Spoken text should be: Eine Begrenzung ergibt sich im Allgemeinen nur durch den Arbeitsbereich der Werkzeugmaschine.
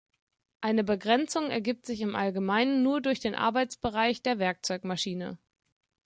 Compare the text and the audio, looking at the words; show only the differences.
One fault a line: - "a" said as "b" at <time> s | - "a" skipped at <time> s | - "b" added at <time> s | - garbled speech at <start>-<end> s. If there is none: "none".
none